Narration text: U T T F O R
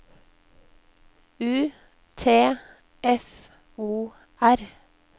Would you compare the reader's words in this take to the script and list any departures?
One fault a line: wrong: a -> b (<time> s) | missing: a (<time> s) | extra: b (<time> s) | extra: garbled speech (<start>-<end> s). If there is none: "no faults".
missing: T (2.5 s)